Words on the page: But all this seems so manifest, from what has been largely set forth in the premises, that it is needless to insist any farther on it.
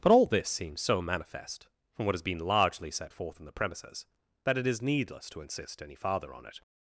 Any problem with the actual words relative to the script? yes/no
no